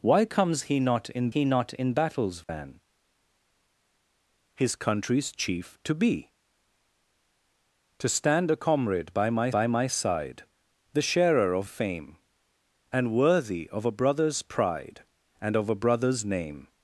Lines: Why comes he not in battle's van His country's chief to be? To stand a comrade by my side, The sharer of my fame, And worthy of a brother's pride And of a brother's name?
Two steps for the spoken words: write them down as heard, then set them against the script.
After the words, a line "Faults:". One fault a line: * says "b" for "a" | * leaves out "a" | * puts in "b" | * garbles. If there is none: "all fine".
Why comes he not in he not in battle's van His country's chief to be? To stand a comrade by my by my side, The sharer of fame, And worthy of a brother's pride And of a brother's name?
Faults:
* puts in "he not in"
* puts in "by my"
* leaves out "my"